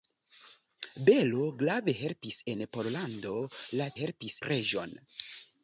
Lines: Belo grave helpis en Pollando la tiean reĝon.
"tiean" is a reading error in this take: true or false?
true